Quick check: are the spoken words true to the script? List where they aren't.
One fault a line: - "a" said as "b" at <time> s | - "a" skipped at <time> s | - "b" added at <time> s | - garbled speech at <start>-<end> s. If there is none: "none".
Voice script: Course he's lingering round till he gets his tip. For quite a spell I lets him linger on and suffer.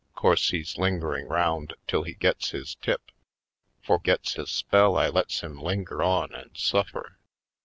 - "quite" said as "gets" at 4.0 s